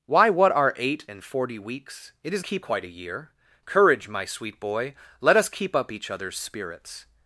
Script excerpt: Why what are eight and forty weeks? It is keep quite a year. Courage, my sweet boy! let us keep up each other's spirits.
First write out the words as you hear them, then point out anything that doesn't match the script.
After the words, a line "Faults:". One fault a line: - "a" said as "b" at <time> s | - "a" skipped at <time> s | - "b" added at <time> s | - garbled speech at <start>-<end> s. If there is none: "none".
Why what are eight and forty weeks? It is keep quite a year. Courage, my sweet boy! let us keep up each other's spirits.
Faults:
none